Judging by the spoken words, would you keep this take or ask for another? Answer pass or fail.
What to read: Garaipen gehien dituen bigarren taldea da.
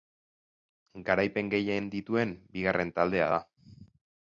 pass